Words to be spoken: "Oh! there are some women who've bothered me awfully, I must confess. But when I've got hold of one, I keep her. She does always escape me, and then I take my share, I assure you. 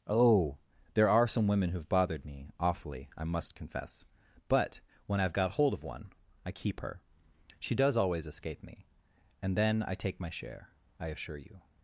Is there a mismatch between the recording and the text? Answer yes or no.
no